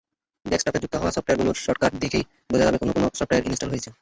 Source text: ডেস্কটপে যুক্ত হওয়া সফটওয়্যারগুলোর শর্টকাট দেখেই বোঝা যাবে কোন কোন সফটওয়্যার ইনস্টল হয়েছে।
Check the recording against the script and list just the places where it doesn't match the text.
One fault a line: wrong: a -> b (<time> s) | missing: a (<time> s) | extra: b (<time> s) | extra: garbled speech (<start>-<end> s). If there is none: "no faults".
no faults